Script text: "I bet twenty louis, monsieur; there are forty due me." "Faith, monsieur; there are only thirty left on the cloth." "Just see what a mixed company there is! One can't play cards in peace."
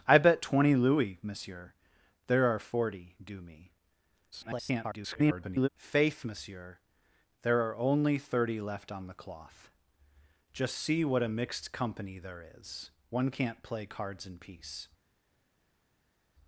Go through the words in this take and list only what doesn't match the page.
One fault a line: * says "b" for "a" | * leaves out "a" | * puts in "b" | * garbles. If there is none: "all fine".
* garbles